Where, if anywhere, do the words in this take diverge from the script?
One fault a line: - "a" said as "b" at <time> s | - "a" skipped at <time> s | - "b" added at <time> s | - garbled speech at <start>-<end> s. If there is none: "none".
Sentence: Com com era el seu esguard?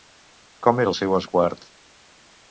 - "com" skipped at 0.8 s